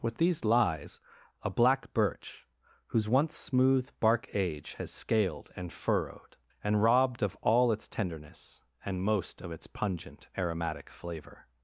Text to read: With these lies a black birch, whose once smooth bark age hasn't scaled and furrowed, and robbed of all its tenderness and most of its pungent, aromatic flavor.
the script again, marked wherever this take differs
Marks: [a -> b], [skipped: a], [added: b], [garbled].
With these lies a black birch, whose once smooth bark age [hasn't -> has] scaled and furrowed, and robbed of all its tenderness and most of its pungent, aromatic flavor.